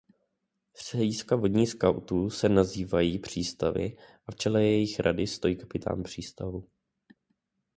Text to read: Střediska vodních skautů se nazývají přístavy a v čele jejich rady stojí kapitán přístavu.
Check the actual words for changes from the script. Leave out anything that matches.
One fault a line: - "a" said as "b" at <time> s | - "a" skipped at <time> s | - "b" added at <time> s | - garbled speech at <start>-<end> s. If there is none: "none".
none